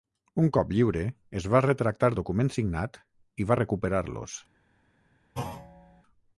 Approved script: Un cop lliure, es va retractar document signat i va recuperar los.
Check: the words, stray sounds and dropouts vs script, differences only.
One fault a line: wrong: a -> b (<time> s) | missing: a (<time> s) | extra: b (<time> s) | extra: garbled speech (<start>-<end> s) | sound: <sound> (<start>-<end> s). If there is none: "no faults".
sound: thud (5.3-6.0 s)